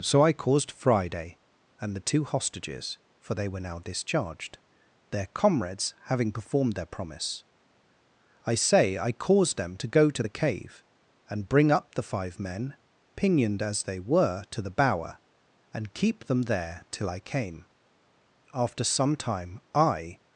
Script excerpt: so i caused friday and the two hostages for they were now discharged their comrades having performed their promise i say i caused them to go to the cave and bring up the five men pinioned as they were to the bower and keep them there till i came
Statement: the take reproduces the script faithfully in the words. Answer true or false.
false